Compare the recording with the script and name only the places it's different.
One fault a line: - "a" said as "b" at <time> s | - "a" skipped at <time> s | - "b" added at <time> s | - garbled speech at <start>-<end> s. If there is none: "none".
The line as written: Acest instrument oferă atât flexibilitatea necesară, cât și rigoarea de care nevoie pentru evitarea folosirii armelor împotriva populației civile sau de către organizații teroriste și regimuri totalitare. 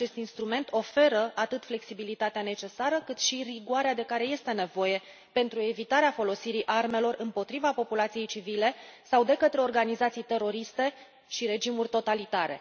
- "este" added at 4.2 s